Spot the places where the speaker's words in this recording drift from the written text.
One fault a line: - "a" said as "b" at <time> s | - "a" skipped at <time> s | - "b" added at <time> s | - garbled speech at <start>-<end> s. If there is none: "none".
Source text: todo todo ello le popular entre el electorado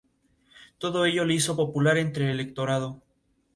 - "todo" skipped at 1.1 s
- "hizo" added at 1.4 s